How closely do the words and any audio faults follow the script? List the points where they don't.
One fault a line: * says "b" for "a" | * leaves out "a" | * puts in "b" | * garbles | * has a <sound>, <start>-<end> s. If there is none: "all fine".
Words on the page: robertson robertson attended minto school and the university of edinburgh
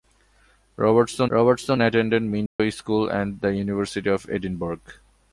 * has a dropout, 2.5-2.6 s